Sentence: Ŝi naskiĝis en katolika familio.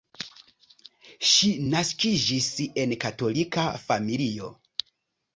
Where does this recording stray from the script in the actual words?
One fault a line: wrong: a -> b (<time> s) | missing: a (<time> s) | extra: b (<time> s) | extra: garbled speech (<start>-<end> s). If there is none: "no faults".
no faults